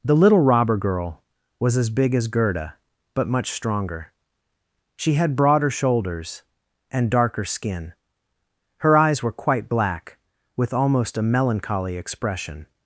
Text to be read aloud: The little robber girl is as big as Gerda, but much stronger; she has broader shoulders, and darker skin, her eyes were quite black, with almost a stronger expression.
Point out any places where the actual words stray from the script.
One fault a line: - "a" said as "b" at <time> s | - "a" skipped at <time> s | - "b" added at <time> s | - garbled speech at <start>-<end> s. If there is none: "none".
- "is" said as "was" at 1.6 s
- "has" said as "had" at 5.1 s
- "stronger" said as "melancholy" at 11.3 s